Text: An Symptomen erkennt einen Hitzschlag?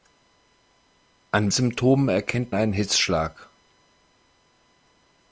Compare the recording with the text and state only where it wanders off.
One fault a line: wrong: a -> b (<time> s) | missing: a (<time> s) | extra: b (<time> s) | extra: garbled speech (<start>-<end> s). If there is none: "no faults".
no faults